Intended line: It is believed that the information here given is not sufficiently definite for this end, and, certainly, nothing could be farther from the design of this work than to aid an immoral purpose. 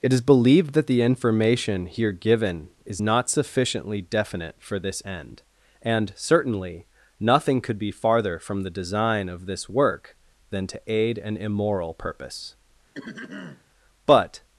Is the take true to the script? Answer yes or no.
no